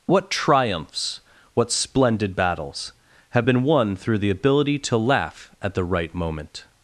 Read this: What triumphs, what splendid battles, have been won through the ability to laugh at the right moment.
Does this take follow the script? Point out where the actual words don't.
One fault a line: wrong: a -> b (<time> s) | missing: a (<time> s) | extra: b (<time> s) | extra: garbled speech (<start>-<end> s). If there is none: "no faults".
no faults